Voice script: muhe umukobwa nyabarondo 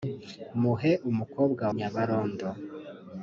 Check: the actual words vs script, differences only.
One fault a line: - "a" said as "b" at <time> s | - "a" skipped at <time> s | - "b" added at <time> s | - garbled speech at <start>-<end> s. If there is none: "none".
none